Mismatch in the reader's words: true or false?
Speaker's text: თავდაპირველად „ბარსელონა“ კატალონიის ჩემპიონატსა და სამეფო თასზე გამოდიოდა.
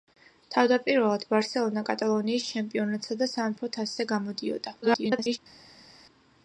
true